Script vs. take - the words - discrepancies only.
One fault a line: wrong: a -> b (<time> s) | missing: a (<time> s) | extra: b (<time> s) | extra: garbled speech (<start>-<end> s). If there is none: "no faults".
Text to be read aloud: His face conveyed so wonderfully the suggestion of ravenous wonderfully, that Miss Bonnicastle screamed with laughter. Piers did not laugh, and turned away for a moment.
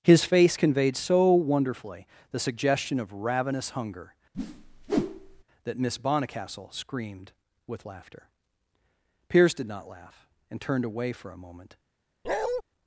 wrong: wonderfully -> hunger (3.7 s)